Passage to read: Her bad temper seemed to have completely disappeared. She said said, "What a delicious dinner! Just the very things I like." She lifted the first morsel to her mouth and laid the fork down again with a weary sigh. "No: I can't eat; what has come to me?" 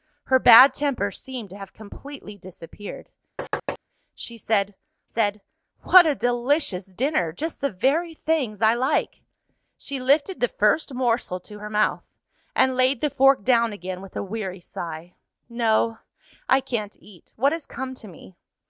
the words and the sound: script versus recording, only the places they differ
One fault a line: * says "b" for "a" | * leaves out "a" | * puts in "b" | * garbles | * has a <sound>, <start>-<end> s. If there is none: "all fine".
* has a thud, 3.4-3.8 s